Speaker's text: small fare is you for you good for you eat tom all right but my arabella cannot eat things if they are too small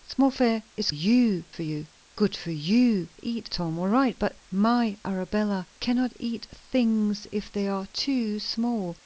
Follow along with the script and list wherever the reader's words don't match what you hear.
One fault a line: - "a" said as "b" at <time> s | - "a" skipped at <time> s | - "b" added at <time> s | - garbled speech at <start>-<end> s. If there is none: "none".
none